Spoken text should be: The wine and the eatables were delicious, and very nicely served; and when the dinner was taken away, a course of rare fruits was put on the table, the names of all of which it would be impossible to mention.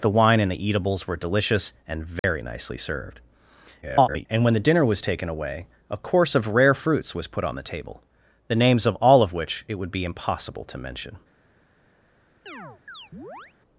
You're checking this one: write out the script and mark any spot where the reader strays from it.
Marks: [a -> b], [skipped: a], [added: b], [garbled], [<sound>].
The wine and the eatables were delicious, and very [dropout] nicely served; [garbled] and when the dinner was taken away, a course of rare fruits was put on the table, the names of all of which it would be impossible to mention. [chirp]